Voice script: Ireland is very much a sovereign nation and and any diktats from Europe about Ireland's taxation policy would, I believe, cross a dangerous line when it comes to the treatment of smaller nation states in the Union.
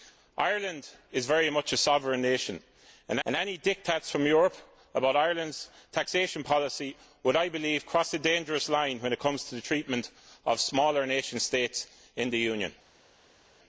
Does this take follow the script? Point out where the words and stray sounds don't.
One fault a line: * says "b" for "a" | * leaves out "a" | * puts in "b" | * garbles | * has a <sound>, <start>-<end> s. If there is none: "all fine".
all fine